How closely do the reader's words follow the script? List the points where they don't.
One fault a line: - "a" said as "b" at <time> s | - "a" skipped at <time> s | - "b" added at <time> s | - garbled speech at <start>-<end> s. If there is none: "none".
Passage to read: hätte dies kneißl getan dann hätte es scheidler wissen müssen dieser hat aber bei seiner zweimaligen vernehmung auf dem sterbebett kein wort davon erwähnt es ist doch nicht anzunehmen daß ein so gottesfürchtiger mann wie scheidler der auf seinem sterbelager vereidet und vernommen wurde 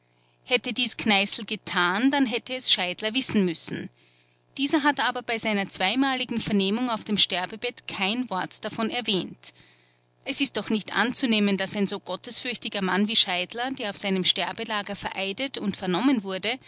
none